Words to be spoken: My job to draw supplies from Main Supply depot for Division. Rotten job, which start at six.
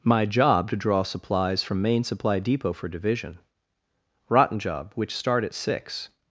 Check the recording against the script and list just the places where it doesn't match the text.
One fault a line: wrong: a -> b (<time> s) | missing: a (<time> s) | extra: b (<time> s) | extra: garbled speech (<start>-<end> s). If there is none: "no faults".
no faults